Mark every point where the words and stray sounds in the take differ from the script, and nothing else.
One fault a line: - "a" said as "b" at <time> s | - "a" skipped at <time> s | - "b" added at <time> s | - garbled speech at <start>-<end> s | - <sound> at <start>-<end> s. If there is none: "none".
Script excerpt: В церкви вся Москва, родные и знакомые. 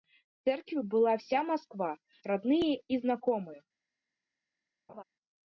- "была" added at 0.8 s
- laugh at 4.9-5.0 s